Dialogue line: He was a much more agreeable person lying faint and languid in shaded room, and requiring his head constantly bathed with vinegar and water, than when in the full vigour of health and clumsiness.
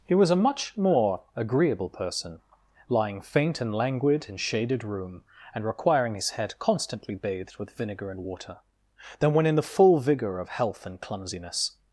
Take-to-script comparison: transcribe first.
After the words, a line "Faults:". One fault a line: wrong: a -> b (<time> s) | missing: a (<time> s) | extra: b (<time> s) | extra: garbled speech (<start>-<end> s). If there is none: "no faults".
He was a much more agreeable person lying faint and languid in shaded room, and requiring his head constantly bathed with vinegar and water, than when in the full vigour of health and clumsiness.
Faults:
no faults